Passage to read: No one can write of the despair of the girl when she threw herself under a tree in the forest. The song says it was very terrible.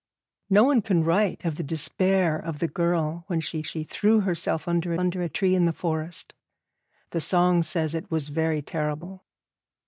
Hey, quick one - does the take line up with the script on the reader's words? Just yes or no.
no